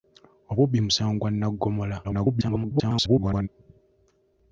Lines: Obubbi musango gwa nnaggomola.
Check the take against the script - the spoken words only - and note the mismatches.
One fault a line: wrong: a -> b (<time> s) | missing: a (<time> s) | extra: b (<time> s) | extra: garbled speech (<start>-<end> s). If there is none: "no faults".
extra: garbled speech (2.0-3.5 s)